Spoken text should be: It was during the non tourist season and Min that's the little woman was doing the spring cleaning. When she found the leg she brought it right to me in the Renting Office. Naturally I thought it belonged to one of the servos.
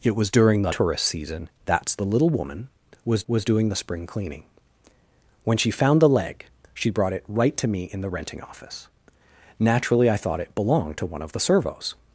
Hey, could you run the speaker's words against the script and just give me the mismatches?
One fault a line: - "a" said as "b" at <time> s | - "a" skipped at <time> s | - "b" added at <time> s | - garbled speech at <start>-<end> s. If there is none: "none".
- "non" skipped at 0.7 s
- "and Min" skipped at 1.5 s
- "was" added at 3.3 s